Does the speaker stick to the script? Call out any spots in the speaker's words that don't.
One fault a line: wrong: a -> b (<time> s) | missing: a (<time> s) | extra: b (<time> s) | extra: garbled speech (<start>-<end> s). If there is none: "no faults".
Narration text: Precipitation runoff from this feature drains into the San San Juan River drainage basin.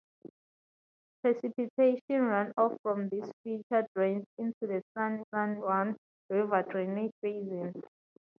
no faults